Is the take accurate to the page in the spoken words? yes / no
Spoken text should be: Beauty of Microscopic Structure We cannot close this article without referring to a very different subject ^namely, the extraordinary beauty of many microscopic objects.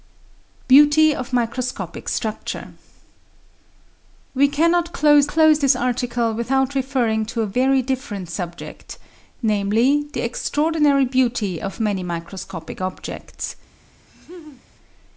no